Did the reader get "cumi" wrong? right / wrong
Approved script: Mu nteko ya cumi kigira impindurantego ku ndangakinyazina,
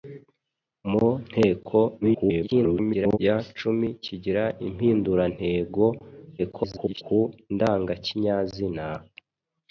right